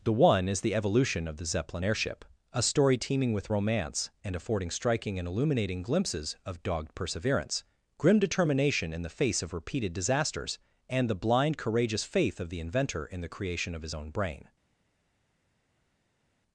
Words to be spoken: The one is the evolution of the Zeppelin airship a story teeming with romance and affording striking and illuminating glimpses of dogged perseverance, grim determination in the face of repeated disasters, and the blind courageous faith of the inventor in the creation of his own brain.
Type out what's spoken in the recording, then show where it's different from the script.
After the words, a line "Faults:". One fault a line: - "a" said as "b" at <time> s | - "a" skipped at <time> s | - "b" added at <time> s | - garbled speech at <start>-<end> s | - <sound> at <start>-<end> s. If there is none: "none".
The one is the evolution of the Zeppelin airship a story teeming with romance and affording striking and illuminating glimpses of dogged perseverance, grim determination in the face of repeated disasters, and the blind courageous faith of the inventor in the creation of his own brain.
Faults:
none